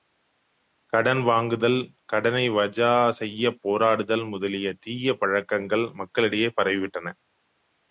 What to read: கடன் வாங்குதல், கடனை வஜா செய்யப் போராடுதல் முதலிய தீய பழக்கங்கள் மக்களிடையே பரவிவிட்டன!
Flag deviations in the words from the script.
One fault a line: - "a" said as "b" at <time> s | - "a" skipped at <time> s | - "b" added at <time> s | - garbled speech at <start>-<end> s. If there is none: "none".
none